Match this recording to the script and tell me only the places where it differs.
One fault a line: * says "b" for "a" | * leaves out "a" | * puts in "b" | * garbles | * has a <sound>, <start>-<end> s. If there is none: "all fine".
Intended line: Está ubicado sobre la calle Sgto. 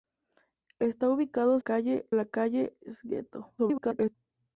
* says "calle" for "sobre"
* garbles